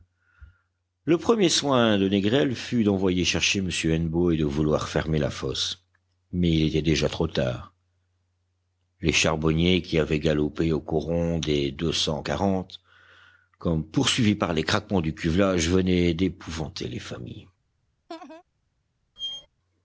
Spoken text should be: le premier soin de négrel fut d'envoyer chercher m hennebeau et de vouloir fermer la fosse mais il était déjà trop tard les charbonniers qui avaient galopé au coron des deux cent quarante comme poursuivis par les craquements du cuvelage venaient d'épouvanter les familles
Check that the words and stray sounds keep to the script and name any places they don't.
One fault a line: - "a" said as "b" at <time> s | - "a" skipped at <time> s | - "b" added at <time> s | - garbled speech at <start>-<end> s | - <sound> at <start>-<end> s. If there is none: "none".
- laugh at 18.1-18.4 s
- squeak at 19.2-19.5 s